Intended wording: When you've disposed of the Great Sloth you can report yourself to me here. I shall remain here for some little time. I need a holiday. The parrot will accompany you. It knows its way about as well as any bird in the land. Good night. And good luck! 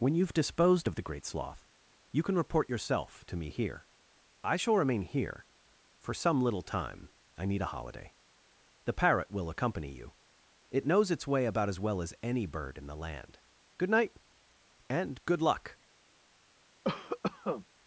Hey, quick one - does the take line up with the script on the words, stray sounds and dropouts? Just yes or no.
no